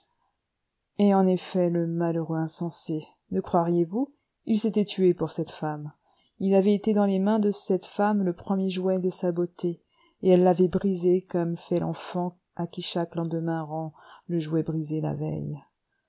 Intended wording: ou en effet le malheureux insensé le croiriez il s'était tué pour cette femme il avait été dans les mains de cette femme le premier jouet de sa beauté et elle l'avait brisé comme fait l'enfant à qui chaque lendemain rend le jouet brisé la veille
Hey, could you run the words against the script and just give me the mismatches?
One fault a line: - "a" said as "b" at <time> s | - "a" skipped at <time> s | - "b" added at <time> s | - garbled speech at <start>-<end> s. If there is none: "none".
- "ou" said as "et" at 1.0 s
- "vous" added at 3.9 s